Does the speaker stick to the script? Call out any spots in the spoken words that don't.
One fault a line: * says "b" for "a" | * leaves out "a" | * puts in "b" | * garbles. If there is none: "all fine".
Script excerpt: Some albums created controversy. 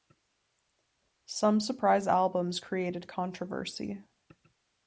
* puts in "surprise"